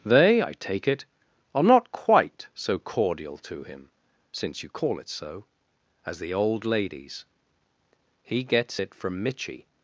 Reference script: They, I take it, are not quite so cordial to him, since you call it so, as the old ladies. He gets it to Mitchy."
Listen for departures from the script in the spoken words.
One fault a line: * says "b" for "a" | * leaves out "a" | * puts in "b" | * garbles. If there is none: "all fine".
* says "from" for "to"